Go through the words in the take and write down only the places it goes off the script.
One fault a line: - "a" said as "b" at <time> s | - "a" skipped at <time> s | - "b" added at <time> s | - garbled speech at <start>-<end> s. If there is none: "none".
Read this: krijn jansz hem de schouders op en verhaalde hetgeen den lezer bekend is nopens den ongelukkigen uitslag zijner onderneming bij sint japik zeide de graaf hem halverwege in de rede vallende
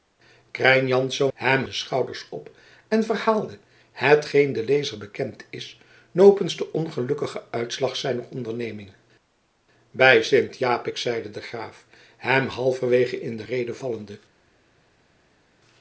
none